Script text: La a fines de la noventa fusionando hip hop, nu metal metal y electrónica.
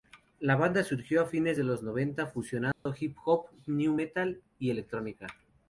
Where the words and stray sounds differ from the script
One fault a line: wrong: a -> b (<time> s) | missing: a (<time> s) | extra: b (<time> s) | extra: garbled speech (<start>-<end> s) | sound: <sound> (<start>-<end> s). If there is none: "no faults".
extra: banda surgió (0.6 s)
wrong: la -> los (1.6 s)
sound: dropout (2.7-2.9 s)
missing: metal (4.4 s)